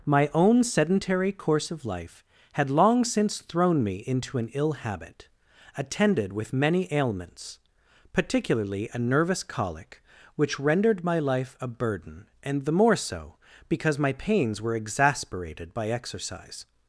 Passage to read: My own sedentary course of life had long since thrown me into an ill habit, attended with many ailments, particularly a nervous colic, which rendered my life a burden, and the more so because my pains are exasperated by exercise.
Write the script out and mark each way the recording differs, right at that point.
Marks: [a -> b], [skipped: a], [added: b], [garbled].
My own sedentary course of life had long since thrown me into an ill habit, attended with many ailments, particularly a nervous colic, which rendered my life a burden, and the more so because my pains [are -> were] exasperated by exercise.